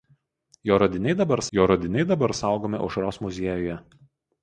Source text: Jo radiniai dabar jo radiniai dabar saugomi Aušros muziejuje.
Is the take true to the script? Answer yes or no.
yes